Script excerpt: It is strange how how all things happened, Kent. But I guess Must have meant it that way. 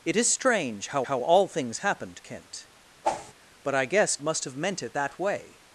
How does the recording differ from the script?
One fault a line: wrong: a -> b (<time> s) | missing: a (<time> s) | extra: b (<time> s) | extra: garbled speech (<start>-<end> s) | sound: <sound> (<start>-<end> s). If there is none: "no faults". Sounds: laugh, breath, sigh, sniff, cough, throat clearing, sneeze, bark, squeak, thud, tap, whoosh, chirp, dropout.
sound: whoosh (3.0-3.3 s)